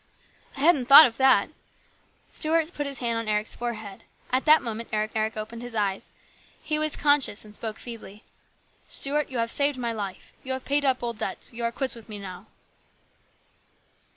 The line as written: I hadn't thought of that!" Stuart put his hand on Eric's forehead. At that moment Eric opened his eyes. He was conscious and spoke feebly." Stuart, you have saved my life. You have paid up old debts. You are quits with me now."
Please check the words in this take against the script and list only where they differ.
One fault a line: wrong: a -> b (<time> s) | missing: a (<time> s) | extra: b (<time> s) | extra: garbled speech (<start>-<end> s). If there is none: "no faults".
extra: Eric (5.1 s)